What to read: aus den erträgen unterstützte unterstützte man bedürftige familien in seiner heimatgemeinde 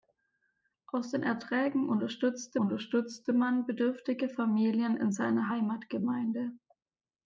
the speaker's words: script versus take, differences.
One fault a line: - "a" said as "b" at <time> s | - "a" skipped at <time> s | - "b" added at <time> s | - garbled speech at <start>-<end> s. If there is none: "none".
none